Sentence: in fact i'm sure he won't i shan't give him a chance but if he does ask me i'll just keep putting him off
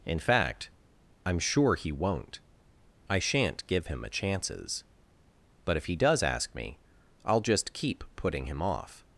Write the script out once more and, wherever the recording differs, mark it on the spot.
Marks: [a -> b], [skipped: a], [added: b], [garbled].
in fact i'm sure he won't i shan't give him a [chance -> chances] but if he does ask me i'll just keep putting him off